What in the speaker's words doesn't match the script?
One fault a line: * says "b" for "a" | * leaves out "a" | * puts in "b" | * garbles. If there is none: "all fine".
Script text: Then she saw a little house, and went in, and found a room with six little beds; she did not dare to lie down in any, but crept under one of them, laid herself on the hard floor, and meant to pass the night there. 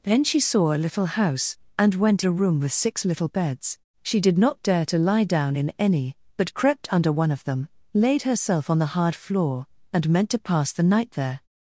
* leaves out "in and found"